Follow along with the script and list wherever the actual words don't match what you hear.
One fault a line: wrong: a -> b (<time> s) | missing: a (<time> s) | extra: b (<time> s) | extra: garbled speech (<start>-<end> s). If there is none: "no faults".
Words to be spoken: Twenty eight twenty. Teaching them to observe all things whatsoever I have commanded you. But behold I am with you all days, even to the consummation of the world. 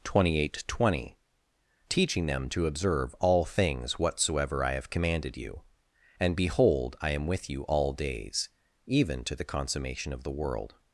wrong: But -> And (6.2 s)